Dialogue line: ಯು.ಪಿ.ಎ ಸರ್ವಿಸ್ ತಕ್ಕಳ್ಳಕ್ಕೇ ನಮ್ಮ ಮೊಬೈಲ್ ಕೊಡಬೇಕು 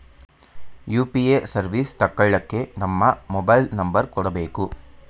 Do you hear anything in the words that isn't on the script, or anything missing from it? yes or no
yes